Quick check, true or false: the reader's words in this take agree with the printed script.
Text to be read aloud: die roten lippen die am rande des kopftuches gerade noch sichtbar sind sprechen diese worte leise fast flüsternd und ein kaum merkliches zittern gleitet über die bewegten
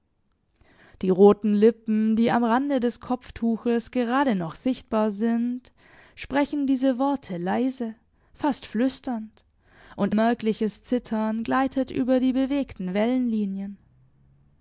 false